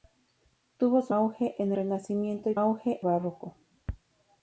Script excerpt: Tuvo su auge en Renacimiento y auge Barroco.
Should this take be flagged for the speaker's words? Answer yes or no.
no